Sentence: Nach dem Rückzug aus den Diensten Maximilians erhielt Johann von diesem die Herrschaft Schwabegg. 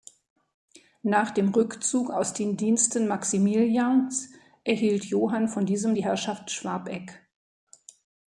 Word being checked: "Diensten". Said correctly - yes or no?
yes